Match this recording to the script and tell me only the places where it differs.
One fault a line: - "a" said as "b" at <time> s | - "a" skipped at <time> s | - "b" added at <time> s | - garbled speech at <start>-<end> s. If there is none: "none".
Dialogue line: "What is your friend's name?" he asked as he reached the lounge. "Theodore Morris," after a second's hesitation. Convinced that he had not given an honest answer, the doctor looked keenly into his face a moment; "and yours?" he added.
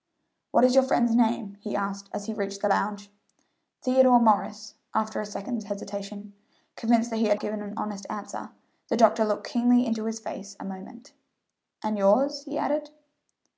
- "not" skipped at 7.4 s